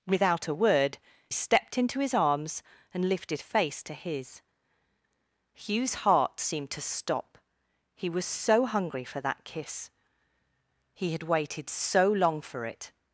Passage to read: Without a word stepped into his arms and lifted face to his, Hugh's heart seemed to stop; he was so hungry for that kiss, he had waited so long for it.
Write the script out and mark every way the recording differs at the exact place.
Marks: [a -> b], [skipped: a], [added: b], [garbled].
Without a word stepped into his arms and lifted face to his, Hugh's heart seemed to stop; he was so hungry for that kiss, he had waited so long for it.